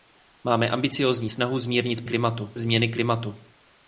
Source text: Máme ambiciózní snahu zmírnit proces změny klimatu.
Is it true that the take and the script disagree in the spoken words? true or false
true